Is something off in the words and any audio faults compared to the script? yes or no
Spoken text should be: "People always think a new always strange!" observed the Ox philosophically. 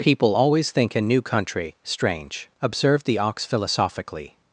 yes